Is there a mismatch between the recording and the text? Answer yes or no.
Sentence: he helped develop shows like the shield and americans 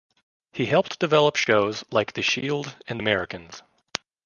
no